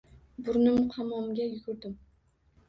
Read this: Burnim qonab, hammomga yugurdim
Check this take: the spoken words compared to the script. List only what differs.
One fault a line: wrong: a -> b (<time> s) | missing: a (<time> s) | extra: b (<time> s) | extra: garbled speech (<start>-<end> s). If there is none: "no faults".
missing: qonab (0.8 s)